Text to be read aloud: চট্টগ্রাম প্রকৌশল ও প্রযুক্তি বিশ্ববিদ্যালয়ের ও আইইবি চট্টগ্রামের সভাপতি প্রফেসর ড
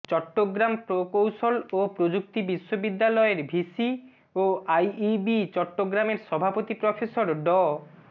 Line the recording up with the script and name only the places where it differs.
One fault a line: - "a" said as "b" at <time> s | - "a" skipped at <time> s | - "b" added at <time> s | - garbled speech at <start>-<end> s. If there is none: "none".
- "ভিসি" added at 3.5 s